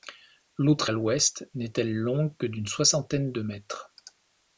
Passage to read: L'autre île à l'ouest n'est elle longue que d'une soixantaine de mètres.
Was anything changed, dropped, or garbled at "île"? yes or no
yes